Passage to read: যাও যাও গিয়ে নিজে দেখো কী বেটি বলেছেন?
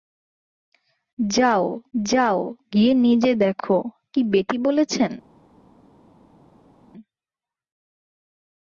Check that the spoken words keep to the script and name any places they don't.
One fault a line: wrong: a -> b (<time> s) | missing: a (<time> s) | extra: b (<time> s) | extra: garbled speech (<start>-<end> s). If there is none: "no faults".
no faults